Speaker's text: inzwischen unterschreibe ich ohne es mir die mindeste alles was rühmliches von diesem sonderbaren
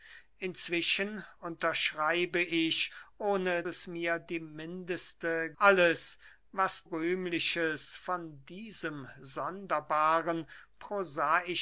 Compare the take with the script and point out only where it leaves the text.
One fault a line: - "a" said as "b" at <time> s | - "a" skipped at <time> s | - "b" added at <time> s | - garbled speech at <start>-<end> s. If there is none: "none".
none